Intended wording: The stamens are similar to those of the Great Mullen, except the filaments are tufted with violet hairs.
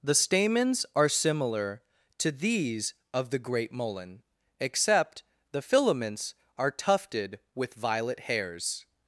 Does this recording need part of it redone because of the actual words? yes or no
yes